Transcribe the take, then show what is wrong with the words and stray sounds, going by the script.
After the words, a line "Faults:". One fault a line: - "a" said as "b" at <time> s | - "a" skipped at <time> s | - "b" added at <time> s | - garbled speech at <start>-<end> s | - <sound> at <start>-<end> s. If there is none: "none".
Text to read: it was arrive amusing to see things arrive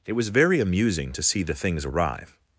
it was very amusing to see the things arrive
Faults:
- "arrive" said as "very" at 0.3 s
- "the" added at 1.4 s